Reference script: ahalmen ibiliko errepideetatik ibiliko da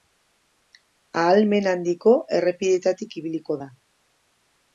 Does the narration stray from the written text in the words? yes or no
yes